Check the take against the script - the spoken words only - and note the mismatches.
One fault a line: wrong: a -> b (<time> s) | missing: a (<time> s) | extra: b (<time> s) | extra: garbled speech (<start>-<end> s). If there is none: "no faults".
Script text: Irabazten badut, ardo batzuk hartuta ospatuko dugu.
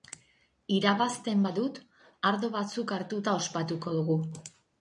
no faults